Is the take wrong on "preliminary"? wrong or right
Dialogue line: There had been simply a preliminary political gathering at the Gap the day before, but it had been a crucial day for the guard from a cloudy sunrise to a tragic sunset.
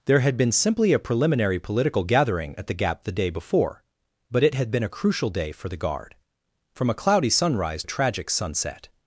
right